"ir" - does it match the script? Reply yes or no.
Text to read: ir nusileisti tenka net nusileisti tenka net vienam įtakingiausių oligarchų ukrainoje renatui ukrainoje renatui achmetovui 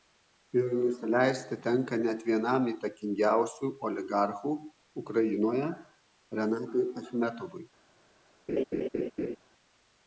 yes